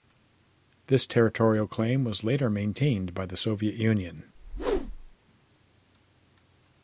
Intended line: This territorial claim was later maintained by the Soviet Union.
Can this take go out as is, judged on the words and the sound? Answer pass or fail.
fail